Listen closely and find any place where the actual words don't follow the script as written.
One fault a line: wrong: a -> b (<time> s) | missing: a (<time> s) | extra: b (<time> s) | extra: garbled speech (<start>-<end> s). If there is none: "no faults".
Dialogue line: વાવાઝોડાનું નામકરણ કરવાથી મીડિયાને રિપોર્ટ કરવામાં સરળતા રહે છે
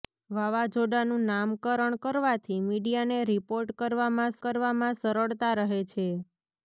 extra: કરવામાં (4.4 s)